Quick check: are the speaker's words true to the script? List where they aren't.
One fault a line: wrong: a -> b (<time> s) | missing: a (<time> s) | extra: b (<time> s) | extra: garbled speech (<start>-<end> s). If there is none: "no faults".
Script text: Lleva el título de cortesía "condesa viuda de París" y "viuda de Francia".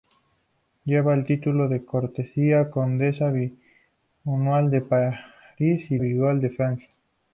no faults